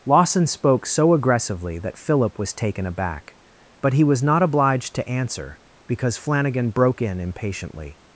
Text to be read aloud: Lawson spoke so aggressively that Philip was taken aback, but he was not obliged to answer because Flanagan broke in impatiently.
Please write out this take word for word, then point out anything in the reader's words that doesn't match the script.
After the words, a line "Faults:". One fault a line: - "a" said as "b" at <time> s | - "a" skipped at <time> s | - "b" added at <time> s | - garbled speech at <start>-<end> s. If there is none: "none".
Lawson spoke so aggressively that Philip was taken aback, but he was not obliged to answer because Flanagan broke in impatiently.
Faults:
none